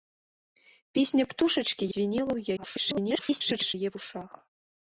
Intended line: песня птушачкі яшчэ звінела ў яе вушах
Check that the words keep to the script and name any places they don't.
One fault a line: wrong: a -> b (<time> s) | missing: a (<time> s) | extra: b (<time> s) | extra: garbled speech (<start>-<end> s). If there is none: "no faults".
missing: яшчэ (1.9 s)
extra: garbled speech (2.6-3.7 s)